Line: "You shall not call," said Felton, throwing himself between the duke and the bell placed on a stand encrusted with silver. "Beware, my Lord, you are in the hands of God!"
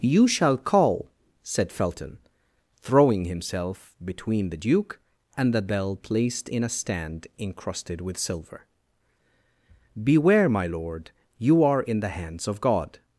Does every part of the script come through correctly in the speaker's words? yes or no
no